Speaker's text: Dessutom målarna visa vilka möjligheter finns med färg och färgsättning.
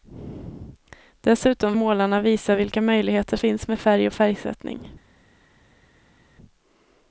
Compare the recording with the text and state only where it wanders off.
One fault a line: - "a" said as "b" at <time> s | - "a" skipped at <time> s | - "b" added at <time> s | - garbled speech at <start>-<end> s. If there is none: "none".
none